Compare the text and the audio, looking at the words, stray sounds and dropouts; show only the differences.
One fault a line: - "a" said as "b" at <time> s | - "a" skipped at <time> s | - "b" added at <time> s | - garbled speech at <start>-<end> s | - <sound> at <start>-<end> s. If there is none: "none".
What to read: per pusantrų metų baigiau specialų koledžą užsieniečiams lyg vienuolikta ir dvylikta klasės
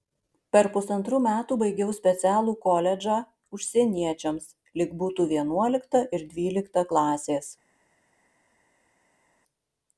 - "būtų" added at 5.0 s